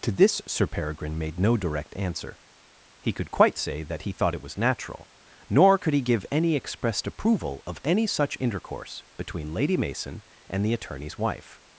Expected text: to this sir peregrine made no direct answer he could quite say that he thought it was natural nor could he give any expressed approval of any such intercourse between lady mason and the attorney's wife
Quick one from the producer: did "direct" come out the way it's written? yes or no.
yes